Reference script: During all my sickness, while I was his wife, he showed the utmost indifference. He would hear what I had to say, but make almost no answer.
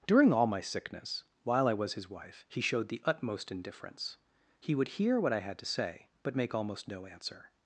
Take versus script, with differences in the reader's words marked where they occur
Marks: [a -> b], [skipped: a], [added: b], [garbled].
During all my sickness, while I was his wife, he showed the utmost indifference. He would hear what I had to say, but make almost no answer.